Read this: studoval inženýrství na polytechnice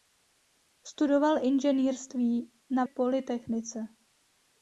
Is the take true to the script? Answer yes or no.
yes